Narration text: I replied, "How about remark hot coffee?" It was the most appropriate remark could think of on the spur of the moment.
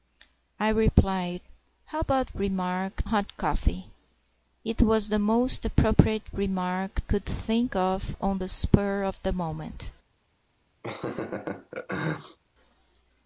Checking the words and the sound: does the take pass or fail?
fail